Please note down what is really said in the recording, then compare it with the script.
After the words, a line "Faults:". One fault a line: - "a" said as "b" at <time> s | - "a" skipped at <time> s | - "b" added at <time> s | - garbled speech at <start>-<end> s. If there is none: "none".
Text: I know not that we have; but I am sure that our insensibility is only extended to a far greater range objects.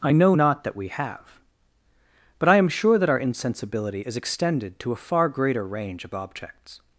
I know not that we have; but I am sure that our insensibility is extended to a far greater range of objects.
Faults:
- "only" skipped at 4.2 s
- "of" added at 6.0 s